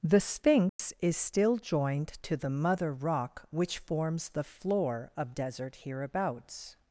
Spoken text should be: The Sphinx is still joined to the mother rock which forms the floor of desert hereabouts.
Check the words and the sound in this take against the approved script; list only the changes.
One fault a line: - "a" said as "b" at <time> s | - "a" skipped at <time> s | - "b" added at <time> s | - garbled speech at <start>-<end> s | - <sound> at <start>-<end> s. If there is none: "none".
- dropout at 0.7-0.8 s